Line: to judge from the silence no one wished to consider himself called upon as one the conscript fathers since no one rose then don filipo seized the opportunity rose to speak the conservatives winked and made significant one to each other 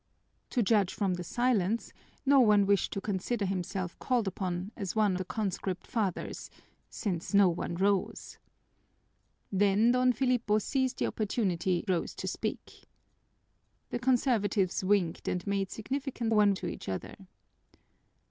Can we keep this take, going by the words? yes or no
yes